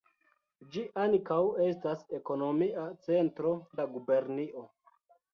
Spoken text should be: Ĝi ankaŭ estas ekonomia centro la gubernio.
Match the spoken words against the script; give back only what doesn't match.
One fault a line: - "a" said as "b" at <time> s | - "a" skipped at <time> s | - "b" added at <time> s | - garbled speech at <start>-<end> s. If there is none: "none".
none